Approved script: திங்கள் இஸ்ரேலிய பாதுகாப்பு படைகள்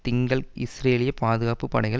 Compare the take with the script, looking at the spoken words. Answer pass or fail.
pass